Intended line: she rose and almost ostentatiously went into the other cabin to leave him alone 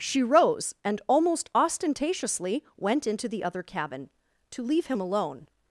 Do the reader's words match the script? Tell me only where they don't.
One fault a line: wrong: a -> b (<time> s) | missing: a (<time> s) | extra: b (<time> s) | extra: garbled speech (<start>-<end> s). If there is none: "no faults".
no faults